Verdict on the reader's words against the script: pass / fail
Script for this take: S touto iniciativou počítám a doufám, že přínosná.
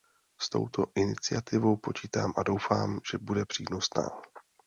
fail